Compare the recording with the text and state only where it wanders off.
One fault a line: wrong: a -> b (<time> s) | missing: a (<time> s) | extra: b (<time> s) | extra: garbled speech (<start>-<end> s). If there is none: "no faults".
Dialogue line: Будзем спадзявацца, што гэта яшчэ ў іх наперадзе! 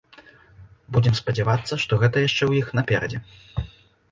no faults